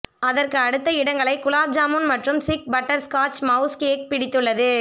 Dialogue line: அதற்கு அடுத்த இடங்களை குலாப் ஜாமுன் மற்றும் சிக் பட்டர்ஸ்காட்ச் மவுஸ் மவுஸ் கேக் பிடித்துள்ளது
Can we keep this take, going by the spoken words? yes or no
no